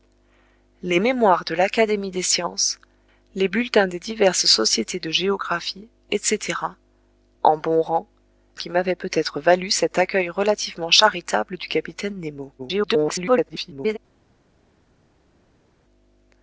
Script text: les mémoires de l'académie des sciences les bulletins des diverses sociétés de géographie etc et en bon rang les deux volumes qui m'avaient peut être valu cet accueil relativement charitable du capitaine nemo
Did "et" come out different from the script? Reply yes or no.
yes